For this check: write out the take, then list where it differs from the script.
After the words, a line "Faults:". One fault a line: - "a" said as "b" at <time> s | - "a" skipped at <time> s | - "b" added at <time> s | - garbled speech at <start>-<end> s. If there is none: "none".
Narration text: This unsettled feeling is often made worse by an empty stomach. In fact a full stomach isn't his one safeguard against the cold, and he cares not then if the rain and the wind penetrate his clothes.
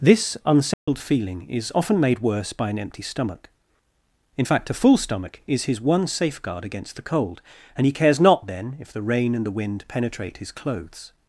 This unsettled feeling is often made worse by an empty stomach. In fact a full stomach is his one safeguard against the cold, and he cares not then if the rain and the wind penetrate his clothes.
Faults:
- "isn't" said as "is" at 5.5 s